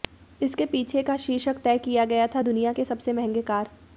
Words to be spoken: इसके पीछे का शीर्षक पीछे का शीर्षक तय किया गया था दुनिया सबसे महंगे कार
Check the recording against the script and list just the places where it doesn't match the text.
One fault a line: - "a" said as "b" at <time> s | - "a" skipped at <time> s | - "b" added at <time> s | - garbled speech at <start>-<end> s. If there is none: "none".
- "पीछे का शीर्षक" skipped at 1.6 s
- "के" added at 2.7 s